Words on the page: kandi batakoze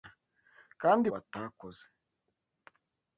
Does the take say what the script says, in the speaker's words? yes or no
yes